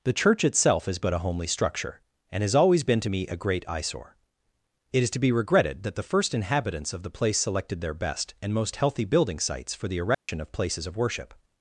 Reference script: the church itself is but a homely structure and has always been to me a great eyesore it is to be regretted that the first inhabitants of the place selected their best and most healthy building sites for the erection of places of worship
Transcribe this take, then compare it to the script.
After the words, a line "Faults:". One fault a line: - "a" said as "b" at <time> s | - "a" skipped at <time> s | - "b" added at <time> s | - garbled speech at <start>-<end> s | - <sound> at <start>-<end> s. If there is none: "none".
the church itself is but a homely structure and has always been to me a great eyesore it is to be regretted that the first inhabitants of the place selected their best and most healthy building sites for the erection of places of worship
Faults:
- dropout at 10.1-10.3 s